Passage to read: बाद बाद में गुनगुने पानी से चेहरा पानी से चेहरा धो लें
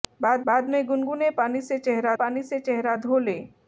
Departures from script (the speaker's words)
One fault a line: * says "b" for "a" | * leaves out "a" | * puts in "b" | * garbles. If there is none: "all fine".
all fine